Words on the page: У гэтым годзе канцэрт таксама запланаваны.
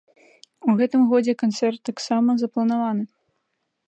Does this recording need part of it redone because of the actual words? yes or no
no